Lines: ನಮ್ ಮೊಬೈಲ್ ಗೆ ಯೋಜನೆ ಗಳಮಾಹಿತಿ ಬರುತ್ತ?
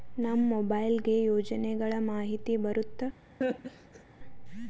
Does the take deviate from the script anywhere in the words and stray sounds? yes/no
yes